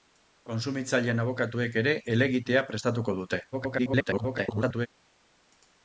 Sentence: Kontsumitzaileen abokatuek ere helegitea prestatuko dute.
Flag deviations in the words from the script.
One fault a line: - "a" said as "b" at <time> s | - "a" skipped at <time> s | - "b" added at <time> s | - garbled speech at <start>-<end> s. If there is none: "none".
- garbled speech at 3.5-4.9 s